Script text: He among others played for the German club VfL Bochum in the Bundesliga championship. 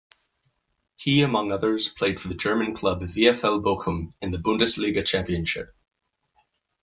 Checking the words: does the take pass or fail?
pass